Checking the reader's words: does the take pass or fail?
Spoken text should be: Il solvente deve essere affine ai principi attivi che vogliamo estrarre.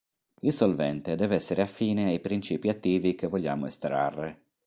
pass